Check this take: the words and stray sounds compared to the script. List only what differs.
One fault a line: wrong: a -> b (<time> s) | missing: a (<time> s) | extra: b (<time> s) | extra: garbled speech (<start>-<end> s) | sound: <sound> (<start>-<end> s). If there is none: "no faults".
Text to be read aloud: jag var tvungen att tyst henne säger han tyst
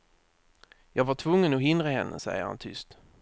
wrong: tyst -> hindra (1.6 s)